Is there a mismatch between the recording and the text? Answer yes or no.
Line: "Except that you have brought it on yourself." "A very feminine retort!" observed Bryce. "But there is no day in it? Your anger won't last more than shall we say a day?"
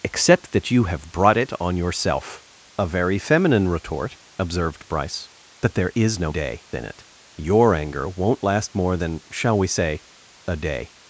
no